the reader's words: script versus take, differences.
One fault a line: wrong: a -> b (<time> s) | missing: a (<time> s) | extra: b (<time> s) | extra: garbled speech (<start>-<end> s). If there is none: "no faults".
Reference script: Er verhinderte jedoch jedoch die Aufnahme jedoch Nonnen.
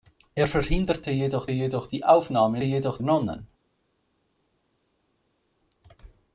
no faults